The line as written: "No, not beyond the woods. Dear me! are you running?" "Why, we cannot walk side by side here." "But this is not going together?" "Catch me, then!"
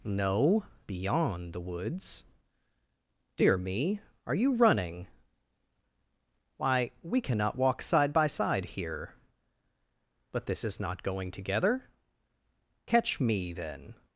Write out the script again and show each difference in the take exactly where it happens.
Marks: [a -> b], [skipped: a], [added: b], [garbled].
"No, [skipped: not] beyond the woods. Dear me! are you running?" "Why, we cannot walk side by side here." "But this is not going together?" "Catch me, then!"